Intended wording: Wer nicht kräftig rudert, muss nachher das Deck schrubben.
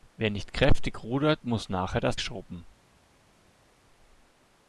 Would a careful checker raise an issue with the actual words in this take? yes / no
yes